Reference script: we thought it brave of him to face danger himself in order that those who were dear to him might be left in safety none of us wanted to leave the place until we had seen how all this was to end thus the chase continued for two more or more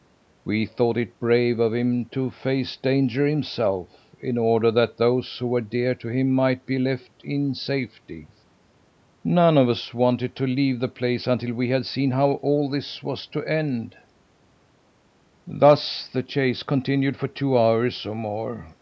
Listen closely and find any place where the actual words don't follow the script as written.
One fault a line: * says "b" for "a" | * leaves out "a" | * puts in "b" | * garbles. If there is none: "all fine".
* says "hours" for "more"